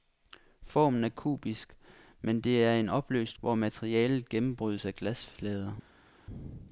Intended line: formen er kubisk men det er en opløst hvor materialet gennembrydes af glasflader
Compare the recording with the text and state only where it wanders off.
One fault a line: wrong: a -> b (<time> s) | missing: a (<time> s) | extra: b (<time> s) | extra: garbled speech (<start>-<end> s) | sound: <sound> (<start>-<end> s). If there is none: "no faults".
no faults